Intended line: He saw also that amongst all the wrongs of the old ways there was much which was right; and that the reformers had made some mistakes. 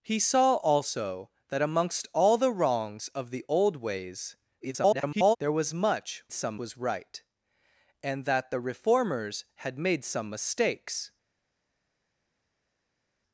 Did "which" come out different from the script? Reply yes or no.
yes